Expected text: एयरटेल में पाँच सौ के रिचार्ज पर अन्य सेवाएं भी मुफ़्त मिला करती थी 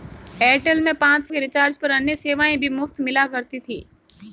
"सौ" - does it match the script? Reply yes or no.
no